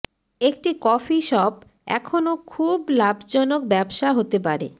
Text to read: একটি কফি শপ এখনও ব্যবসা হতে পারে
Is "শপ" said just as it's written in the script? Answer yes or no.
yes